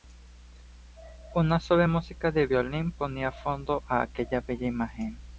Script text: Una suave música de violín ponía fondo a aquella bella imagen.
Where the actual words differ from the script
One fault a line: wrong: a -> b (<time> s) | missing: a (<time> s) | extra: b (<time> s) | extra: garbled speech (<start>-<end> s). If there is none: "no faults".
no faults